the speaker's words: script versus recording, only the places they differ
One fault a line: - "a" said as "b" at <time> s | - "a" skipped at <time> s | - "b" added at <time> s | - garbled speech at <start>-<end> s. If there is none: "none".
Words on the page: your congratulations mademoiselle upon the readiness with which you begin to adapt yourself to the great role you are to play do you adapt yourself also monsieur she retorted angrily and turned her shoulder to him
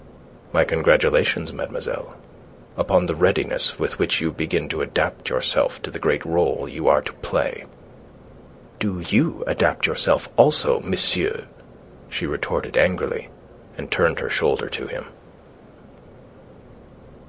- "your" said as "my" at 0.5 s